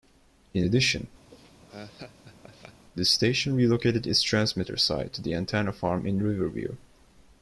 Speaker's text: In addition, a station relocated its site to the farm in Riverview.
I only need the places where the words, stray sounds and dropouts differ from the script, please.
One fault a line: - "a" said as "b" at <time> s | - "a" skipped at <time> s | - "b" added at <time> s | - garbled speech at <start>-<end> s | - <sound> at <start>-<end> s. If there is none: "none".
- laugh at 1.3-2.9 s
- "a" said as "the" at 3.0 s
- "transmitter" added at 4.2 s
- "antenna" added at 5.4 s